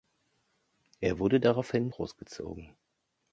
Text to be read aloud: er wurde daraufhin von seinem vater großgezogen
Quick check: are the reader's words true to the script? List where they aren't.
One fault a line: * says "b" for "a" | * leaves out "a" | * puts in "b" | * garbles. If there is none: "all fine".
* leaves out "von seinem vater"